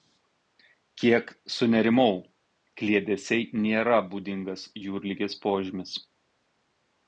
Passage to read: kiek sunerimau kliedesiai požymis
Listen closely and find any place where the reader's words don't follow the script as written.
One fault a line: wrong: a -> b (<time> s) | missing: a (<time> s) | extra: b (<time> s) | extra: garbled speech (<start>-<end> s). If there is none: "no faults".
extra: nėra būdingas jūrligės (3.7 s)